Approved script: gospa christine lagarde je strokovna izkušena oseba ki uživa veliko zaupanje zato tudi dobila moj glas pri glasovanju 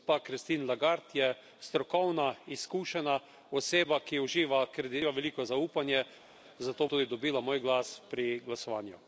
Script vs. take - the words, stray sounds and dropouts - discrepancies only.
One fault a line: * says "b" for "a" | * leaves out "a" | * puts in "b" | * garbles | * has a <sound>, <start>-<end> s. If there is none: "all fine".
all fine